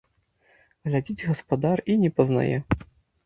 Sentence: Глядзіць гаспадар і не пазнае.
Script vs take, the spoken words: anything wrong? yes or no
no